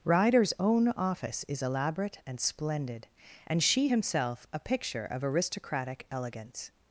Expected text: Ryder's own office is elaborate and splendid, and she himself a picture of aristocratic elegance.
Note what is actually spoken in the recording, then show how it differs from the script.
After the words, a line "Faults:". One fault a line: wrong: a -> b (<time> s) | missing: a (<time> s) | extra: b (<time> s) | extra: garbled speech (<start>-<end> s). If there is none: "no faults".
Ryder's own office is elaborate and splendid, and she himself a picture of aristocratic elegance.
Faults:
no faults